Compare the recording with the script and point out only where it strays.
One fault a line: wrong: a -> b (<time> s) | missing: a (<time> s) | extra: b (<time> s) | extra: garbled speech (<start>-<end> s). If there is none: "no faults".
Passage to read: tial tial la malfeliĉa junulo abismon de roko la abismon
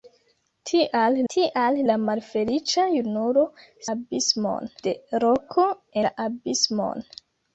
no faults